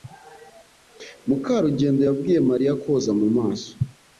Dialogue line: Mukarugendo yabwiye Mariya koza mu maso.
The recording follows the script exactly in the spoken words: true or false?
true